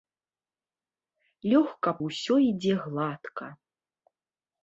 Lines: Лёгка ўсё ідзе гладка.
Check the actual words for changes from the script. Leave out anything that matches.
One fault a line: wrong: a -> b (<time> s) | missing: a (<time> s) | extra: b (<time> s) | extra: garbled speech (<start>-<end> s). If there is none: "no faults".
no faults